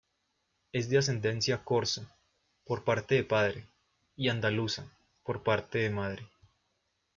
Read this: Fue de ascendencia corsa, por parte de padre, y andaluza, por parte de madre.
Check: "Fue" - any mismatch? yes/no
yes